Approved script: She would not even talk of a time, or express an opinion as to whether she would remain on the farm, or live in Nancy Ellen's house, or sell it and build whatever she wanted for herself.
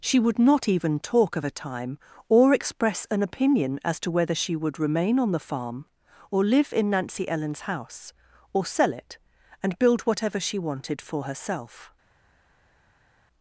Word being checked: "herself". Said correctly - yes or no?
yes